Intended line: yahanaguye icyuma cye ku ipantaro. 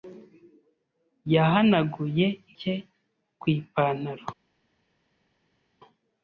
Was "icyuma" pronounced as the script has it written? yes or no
no